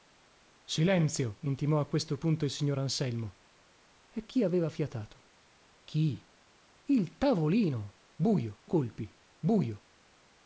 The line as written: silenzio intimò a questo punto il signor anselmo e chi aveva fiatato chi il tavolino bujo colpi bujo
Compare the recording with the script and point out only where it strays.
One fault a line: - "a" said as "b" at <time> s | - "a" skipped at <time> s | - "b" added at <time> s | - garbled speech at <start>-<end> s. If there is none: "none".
none